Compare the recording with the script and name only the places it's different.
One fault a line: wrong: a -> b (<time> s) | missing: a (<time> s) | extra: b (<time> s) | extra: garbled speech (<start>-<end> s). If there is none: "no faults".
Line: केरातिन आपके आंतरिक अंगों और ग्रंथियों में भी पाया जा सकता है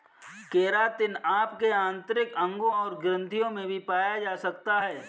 no faults